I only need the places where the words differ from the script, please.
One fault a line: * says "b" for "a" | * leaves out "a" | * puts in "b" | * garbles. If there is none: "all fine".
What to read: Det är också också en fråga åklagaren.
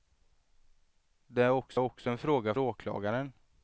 all fine